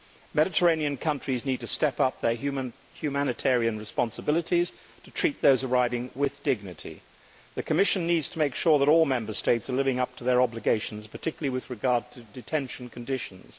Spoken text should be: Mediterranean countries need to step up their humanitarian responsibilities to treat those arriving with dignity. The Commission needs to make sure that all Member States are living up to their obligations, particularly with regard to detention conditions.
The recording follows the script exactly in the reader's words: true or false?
true